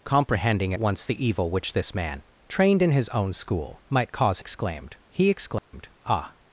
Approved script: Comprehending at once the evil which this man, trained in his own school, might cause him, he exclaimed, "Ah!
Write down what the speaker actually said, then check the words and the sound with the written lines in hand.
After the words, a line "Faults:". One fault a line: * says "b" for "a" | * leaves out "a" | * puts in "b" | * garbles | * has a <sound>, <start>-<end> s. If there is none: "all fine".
Comprehending once the evil which this man, trained in his own school, might cause exclaimed, he exclaimed, "Ah!
Faults:
* leaves out "at"
* says "exclaimed" for "him"
* has a dropout, 5.6-5.7 s